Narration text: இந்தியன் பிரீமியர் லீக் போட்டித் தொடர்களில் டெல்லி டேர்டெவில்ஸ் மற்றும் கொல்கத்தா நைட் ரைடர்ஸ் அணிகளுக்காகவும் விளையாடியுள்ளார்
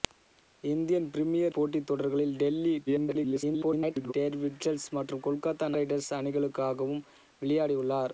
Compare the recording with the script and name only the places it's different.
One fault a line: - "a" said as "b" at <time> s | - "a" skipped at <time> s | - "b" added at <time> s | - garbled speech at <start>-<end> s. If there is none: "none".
- "லீக்" skipped at 1.6 s
- garbled speech at 2.9-4.1 s
- "நைட்" skipped at 5.7 s